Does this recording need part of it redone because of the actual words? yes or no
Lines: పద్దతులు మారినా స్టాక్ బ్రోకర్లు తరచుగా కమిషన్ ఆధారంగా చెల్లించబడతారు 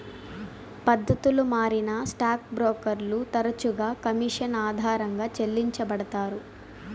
no